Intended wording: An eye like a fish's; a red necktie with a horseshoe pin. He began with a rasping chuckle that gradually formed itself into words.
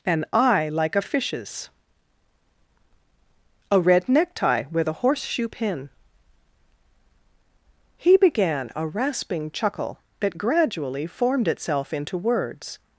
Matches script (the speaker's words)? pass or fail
fail